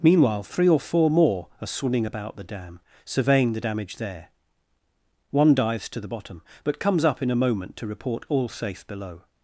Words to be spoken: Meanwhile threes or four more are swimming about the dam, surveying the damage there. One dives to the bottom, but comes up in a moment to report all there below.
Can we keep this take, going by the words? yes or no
no